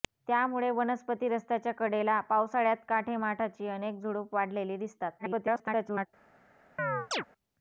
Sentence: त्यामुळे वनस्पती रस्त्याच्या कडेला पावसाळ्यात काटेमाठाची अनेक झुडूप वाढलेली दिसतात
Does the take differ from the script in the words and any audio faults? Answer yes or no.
yes